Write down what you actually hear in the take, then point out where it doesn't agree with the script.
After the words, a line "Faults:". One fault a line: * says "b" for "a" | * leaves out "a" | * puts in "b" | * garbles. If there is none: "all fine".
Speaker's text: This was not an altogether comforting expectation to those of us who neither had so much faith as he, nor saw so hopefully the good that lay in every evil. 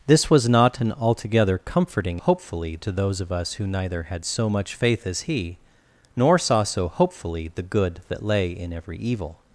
This was not an altogether comforting hopefully to those of us who neither had so much faith as he, nor saw so hopefully the good that lay in every evil.
Faults:
* says "hopefully" for "expectation"